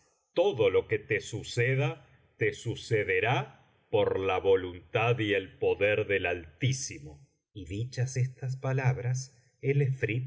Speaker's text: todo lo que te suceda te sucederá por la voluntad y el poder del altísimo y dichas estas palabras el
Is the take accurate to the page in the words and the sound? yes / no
yes